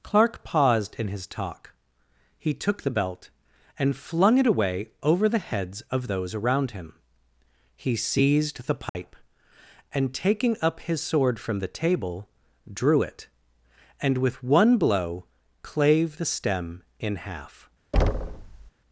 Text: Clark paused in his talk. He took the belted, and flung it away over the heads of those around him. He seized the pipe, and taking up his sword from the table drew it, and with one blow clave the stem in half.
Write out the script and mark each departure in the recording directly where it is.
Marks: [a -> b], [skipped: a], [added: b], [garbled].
Clark paused in his talk. He took the [belted, -> belt] and flung it away over the heads of those around him. He seized the pipe, and taking up his sword from the table drew it, and with one blow clave the stem in half.